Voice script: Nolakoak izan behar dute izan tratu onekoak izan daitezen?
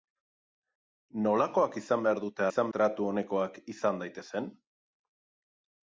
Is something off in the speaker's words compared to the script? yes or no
no